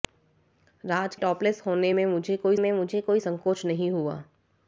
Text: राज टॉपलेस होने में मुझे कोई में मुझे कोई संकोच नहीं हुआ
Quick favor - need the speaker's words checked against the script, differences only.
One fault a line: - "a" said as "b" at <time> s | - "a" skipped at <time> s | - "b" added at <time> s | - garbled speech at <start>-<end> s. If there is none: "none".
none